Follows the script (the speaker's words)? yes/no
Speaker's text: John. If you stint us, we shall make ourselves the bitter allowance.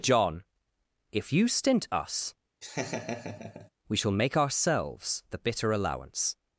yes